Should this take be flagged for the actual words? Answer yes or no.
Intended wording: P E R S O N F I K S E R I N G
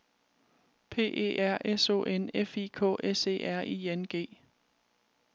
no